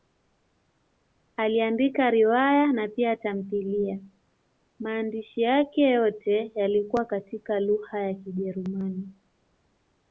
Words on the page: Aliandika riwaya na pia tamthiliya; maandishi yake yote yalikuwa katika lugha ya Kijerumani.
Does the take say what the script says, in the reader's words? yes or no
yes